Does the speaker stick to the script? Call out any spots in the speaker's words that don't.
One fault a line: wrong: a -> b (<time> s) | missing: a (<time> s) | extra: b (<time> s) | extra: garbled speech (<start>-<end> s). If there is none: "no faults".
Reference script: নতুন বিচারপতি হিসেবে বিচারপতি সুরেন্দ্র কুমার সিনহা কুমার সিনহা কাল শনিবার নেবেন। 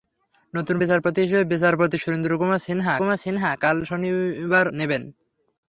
no faults